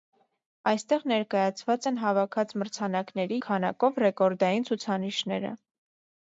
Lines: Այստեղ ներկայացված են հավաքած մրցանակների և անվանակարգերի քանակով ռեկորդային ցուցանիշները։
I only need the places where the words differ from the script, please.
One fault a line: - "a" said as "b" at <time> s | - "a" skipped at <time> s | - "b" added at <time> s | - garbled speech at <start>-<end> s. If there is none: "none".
- "և անվանակարգերի" skipped at 3.4 s